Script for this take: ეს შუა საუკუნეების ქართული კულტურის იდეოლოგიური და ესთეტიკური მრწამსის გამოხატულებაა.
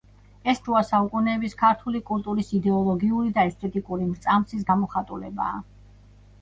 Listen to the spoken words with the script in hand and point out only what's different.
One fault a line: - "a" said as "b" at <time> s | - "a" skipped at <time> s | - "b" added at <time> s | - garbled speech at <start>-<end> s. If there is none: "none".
none